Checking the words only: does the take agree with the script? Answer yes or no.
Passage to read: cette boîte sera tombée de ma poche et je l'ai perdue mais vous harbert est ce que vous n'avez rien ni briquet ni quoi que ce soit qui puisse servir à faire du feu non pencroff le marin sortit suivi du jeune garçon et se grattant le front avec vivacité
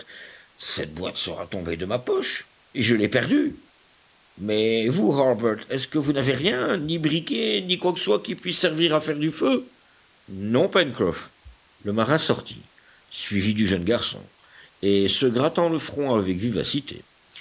no